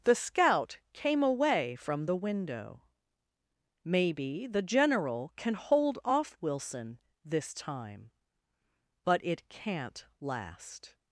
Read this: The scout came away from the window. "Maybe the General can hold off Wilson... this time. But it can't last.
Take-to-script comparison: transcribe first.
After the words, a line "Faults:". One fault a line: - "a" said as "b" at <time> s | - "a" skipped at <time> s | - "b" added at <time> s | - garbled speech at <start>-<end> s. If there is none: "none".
The scout came away from the window. "Maybe the General can hold off Wilson... this time. But it can't last.
Faults:
none